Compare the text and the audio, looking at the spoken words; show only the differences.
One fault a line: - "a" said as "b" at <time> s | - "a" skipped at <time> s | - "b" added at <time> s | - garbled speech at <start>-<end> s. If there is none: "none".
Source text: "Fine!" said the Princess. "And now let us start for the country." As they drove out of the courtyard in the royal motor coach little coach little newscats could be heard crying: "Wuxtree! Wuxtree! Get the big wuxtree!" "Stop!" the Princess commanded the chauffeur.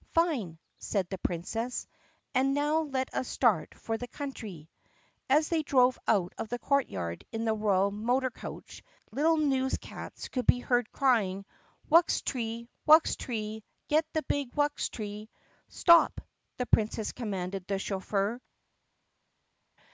- "coach little" skipped at 9.4 s